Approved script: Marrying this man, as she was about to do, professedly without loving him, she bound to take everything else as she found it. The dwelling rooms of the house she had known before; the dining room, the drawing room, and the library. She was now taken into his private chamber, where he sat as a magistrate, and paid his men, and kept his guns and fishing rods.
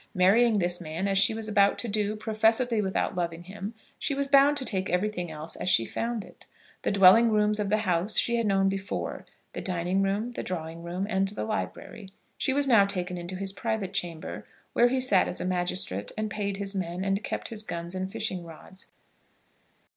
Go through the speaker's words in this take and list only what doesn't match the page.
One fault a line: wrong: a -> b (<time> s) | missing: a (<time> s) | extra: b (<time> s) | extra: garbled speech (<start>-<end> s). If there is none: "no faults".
extra: was (4.2 s)